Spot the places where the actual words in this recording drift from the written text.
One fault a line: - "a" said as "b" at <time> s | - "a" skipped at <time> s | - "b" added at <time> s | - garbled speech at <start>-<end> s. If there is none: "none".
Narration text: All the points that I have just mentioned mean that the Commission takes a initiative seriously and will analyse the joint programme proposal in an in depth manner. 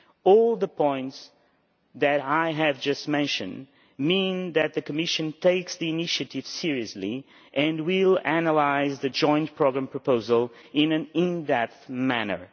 - "a" said as "the" at 5.8 s